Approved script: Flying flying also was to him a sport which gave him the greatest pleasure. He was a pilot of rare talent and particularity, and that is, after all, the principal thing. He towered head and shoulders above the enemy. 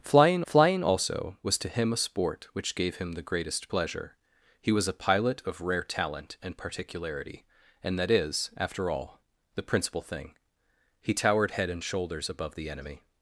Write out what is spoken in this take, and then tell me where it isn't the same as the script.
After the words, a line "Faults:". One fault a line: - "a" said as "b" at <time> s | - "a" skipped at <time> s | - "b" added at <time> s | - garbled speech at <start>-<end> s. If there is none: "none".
Flying flying also was to him a sport which gave him the greatest pleasure. He was a pilot of rare talent and particularity, and that is, after all, the principal thing. He towered head and shoulders above the enemy.
Faults:
none